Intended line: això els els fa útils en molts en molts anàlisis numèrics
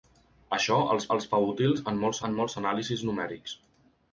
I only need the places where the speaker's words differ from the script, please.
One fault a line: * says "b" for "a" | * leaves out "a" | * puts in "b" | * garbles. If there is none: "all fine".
all fine